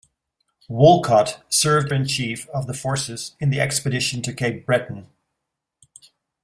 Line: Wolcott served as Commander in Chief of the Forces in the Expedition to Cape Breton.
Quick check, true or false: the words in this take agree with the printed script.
false